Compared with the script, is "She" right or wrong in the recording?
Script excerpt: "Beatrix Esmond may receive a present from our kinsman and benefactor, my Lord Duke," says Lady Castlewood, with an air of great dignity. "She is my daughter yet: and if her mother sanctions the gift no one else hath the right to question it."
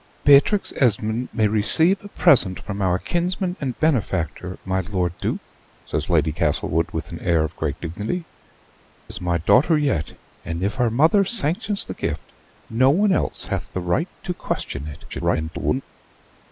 wrong